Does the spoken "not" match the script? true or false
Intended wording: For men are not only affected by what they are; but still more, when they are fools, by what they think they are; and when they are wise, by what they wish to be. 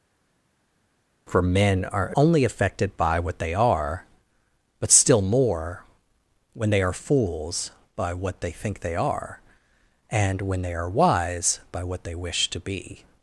false